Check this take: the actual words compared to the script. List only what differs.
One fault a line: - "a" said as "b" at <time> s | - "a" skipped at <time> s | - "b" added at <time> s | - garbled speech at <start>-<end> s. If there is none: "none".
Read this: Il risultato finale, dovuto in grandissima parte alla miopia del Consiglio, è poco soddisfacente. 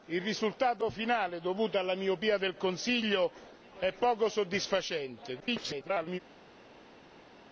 - "in grandissima parte" skipped at 1.8 s
- garbled speech at 5.4-6.2 s